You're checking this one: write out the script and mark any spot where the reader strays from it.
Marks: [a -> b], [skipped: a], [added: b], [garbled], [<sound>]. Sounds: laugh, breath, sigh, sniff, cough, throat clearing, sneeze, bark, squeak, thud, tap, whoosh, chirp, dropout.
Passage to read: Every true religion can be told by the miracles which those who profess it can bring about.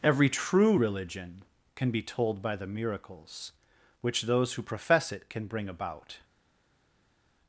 Every true religion can be told by the miracles which those who profess it can bring about.